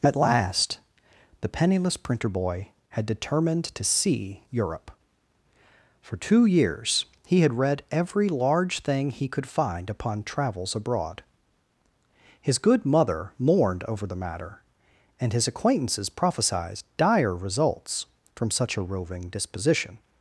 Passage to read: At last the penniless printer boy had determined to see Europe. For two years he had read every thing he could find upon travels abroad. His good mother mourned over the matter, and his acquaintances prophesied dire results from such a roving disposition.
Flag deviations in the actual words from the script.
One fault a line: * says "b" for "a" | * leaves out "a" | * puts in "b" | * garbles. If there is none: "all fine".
* puts in "large"